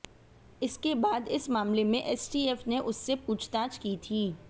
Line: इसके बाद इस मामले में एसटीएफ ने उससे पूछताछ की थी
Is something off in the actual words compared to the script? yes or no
no